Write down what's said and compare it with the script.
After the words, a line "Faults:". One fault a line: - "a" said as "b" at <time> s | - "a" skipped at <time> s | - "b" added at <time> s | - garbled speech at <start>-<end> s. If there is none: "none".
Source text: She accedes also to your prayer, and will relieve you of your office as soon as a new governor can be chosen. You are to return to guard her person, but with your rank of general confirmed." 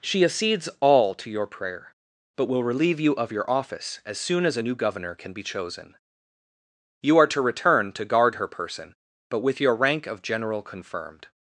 She accedes all to your prayer, but will relieve you of your office as soon as a new governor can be chosen. You are to return to guard her person, but with your rank of general confirmed."
Faults:
- "also" said as "all" at 0.8 s
- "and" said as "but" at 2.4 s